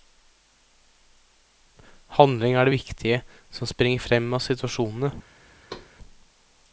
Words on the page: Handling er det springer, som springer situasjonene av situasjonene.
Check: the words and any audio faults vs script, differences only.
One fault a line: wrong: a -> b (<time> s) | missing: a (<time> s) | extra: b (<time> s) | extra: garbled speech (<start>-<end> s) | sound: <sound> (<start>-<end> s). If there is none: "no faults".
wrong: springer -> viktige (2.7 s)
wrong: situasjonene -> frem (4.0 s)
sound: thud (5.7-5.9 s)